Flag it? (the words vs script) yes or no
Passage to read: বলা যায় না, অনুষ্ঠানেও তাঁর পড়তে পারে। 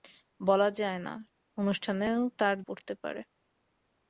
no